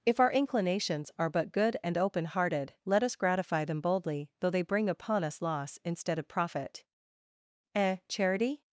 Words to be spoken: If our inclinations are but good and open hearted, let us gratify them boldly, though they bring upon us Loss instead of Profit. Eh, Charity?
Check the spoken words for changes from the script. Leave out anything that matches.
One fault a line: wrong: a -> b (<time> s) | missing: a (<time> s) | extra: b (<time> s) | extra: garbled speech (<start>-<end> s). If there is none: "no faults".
no faults